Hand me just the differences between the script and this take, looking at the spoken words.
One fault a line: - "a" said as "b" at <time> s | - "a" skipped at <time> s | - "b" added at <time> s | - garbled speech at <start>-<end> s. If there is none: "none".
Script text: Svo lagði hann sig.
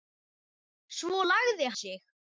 - "hann" skipped at 1.7 s